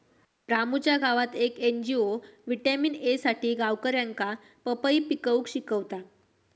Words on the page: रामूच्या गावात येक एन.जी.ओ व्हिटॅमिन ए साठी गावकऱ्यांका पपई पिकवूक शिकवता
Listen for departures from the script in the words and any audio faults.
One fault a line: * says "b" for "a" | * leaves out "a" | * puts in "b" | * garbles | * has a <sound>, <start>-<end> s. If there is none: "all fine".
all fine